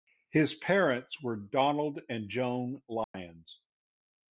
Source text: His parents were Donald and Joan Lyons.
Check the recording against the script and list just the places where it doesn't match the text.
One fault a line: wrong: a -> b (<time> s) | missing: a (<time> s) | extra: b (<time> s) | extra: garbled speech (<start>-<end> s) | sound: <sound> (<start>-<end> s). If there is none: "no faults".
sound: dropout (3.0-3.1 s)